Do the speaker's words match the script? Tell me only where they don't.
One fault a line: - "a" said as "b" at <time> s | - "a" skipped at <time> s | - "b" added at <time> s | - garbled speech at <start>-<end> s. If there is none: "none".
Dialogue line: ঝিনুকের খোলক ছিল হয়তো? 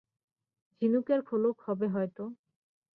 - "ছিল" said as "হবে" at 1.7 s